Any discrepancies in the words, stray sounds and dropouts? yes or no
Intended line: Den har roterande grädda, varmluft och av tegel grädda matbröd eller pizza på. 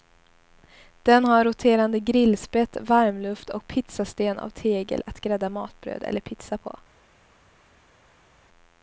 yes